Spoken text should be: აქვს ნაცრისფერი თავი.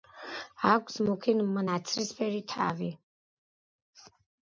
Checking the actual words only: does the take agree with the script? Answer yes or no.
no